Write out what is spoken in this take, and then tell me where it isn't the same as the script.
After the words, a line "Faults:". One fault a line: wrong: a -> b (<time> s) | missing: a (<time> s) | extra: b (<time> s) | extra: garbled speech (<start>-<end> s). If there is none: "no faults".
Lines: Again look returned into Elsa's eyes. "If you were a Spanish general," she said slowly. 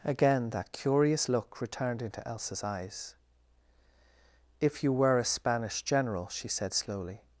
Again that curious look returned into Elsa's eyes. "If you were a Spanish general," she said slowly.
Faults:
extra: that curious (0.5 s)